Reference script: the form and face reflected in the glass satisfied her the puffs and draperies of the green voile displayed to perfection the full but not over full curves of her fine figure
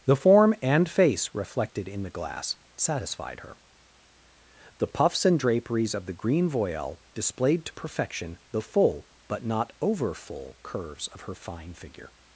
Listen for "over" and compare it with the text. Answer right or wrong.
right